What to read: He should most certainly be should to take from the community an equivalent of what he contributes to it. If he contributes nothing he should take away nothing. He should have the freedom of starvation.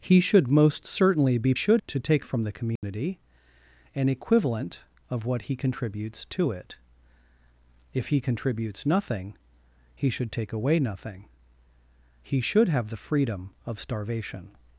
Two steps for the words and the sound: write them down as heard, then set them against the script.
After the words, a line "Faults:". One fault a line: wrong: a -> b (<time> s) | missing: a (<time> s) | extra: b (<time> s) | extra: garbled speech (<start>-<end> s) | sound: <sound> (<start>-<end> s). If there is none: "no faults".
He should most certainly be should to take from the community an equivalent of what he contributes to it. If he contributes nothing he should take away nothing. He should have the freedom of starvation.
Faults:
sound: dropout (2.8-2.8 s)